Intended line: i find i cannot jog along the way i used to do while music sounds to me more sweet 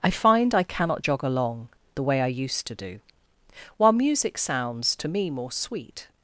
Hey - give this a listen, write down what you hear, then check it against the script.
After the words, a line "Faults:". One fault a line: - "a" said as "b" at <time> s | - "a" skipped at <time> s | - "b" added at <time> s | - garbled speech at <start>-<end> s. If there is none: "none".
i find i cannot jog along the way i used to do while music sounds to me more sweet
Faults:
none